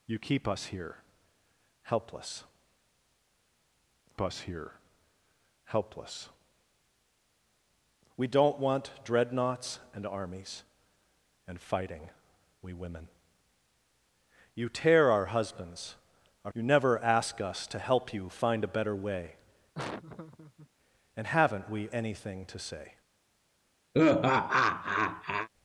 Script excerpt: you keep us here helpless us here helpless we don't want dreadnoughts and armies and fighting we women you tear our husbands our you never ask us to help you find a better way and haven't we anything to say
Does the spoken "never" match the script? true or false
true